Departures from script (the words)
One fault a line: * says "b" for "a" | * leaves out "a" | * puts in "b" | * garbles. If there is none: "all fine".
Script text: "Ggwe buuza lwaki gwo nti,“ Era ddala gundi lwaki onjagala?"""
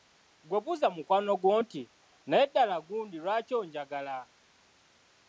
* says "mukwano" for "lwaki"
* says "Naye" for "Era"